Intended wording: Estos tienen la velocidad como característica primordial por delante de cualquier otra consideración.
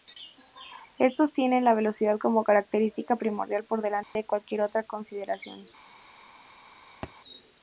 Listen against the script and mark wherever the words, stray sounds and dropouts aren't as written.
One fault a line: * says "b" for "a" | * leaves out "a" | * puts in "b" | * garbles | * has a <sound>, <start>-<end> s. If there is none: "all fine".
* has a dropout, 4.0-4.2 s
* has a thud, 7.0-7.1 s